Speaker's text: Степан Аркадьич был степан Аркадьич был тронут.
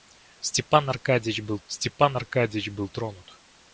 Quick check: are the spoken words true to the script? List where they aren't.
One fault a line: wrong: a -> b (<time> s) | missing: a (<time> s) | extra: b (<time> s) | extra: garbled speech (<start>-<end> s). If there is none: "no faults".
no faults